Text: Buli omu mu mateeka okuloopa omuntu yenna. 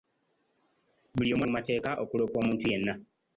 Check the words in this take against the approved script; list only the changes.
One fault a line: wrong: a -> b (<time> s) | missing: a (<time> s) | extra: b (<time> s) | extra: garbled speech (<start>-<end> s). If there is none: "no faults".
no faults